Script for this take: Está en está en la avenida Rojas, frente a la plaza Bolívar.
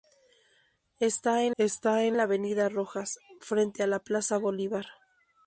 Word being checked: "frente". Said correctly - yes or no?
yes